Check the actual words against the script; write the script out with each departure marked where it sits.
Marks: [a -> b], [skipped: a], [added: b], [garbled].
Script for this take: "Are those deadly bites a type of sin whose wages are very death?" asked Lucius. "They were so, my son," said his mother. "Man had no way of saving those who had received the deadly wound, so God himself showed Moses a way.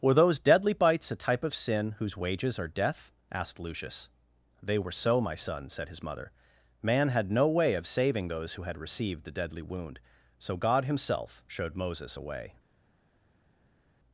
["Are -> Were] those deadly bites a type of sin whose wages are [skipped: very] death?" asked Lucius. "They were so, my son," said his mother. "Man had no way of saving those who had received the deadly wound, so God himself showed Moses a way.